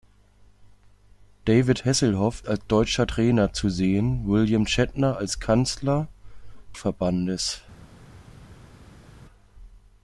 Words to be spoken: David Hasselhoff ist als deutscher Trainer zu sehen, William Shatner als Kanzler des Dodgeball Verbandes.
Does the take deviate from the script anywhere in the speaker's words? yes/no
yes